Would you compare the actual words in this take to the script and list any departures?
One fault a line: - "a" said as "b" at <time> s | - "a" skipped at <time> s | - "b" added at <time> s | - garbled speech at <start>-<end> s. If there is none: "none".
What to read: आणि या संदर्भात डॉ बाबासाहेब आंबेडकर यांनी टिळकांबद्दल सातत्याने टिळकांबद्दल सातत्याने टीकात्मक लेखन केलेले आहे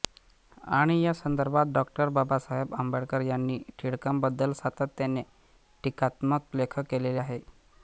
- "टिळकांबद्दल सातत्याने" skipped at 5.2 s